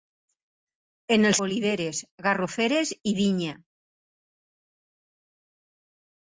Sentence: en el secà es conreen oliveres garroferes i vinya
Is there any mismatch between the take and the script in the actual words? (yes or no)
yes